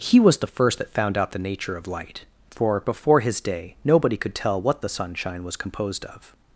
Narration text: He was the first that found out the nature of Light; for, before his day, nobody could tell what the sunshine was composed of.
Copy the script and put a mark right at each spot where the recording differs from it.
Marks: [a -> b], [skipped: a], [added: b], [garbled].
He was the first that found out the nature of Light; for, before his day, nobody could tell what the sunshine was composed of.